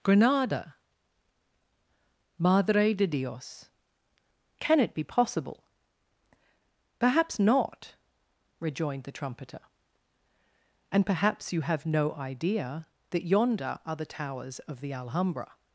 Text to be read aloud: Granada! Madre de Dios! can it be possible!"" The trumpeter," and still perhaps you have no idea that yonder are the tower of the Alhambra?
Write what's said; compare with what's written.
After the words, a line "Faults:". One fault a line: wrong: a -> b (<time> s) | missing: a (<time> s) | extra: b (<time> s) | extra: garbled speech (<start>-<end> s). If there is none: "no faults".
Granada! Madre de Dios! can it be possible!"" Perhaps not!" rejoined the trumpeter," and perhaps you have no idea that yonder are the towers of the Alhambra?
Faults:
extra: Perhaps not rejoined (7.0 s)
missing: still (11.0 s)
wrong: tower -> towers (14.1 s)